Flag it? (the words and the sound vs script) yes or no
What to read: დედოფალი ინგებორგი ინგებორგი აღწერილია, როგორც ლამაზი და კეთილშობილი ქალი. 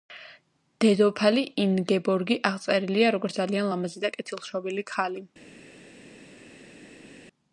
yes